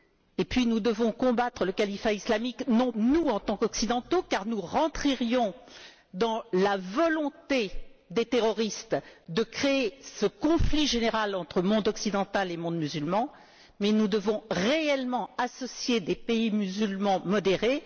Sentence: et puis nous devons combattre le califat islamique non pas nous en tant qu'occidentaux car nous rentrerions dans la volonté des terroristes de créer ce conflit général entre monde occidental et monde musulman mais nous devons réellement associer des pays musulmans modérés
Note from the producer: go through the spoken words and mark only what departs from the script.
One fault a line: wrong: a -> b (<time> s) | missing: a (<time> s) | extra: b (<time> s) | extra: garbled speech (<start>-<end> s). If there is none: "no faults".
missing: pas (2.9 s)